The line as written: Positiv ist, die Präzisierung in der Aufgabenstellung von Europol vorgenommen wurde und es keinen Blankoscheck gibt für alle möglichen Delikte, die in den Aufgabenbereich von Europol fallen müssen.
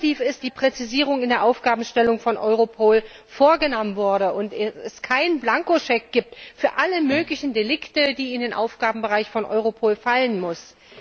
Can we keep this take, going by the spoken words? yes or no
yes